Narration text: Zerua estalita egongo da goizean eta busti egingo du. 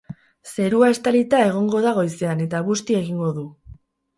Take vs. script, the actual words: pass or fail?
pass